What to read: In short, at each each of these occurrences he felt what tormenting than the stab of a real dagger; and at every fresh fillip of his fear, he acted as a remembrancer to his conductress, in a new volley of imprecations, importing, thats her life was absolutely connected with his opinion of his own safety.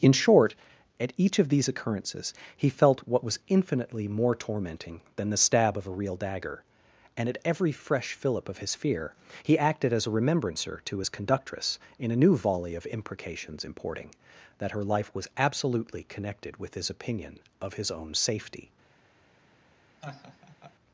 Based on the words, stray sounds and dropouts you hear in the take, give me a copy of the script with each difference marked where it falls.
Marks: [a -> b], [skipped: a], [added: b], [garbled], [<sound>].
In short, at each [skipped: each] of these occurrences he felt what [added: was infinitely more] tormenting than the stab of a real dagger; and at every fresh fillip of his fear, he acted as a remembrancer to his conductress, in a new volley of imprecations, importing, [thats -> that] her life was absolutely connected with his opinion of his own safety. [laugh]